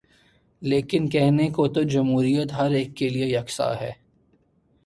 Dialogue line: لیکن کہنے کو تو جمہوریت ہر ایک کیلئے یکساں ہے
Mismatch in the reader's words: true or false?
false